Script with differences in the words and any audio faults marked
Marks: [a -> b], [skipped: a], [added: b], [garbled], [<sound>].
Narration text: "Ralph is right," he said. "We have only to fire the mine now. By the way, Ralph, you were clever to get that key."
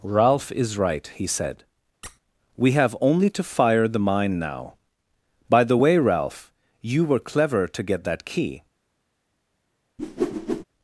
"Ralph is right," he said. [squeak] "We have only to fire the mine now. By the way, Ralph, you were clever to get that key." [whoosh]